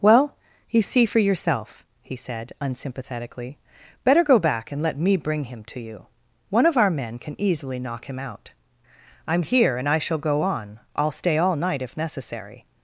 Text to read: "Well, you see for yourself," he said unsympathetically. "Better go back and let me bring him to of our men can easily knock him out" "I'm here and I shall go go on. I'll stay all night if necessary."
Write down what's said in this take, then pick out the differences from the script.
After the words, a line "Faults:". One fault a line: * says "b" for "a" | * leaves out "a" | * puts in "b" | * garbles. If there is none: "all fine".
"Well, you see for yourself," he said unsympathetically. "Better go back and let me bring him to you. One of our men can easily knock him out" "I'm here and I shall go on. I'll stay all night if necessary."
Faults:
* puts in "you One"
* leaves out "go"